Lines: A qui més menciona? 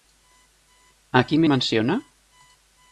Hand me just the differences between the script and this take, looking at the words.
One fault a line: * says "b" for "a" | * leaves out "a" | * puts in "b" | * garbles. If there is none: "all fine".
* leaves out "més"